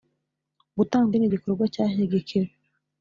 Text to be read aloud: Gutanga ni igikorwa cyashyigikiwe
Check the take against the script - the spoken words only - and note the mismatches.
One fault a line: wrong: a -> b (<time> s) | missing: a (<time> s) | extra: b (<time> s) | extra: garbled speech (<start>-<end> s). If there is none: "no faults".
no faults